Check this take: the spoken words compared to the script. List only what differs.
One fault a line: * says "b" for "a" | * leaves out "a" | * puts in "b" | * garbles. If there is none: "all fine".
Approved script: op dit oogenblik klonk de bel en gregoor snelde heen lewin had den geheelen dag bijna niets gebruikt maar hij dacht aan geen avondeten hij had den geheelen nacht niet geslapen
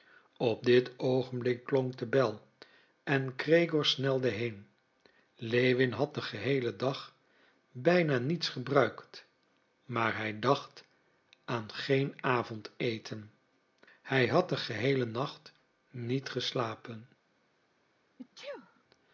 all fine